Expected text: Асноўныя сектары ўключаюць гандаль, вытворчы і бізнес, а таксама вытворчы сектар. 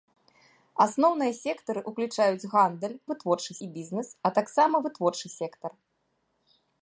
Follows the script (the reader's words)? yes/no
yes